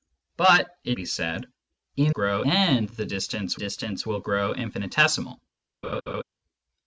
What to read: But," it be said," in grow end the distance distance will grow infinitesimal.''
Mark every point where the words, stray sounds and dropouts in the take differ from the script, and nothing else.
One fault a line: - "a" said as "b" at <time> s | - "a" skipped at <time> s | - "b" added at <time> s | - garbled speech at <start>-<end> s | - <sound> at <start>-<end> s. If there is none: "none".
- laugh at 5.8-6.2 s